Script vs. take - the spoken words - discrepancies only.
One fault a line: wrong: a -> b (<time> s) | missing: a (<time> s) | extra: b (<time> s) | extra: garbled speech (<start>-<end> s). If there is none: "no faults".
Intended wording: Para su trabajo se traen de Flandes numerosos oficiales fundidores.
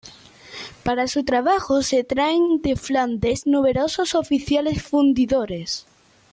no faults